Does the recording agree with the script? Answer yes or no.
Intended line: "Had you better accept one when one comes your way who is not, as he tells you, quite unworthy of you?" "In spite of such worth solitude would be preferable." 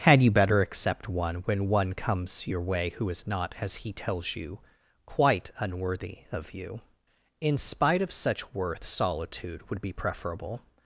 yes